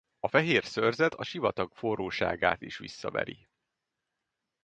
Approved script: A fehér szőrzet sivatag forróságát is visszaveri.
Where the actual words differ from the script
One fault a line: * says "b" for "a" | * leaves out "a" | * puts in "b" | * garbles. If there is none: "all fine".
* puts in "a"